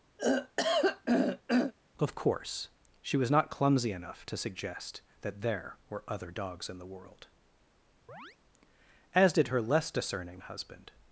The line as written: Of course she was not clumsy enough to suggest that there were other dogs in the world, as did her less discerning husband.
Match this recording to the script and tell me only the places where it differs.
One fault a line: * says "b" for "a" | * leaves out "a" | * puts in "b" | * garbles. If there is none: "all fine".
all fine